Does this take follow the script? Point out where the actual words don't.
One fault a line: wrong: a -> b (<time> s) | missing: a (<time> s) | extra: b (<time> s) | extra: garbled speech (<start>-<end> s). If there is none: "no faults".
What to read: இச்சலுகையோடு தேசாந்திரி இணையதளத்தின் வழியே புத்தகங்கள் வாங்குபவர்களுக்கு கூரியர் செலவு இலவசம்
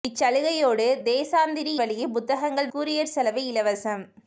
missing: இணையதளத்தின் (1.7 s)
missing: வாங்குபவர்களுக்கு (2.7 s)